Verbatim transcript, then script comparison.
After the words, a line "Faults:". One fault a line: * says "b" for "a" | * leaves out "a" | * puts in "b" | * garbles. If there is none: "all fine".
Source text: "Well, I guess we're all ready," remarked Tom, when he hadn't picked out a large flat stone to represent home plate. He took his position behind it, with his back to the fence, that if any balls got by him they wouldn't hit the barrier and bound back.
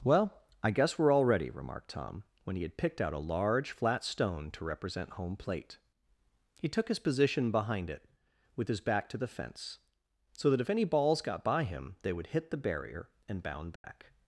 "Well, I guess we're all ready," remarked Tom, when he had picked out a large flat stone to represent home plate. He took his position behind it, with his back to the fence, so that if any balls got by him they would hit the barrier and bound back.
Faults:
* says "had" for "hadn't"
* puts in "so"
* says "would" for "wouldn't"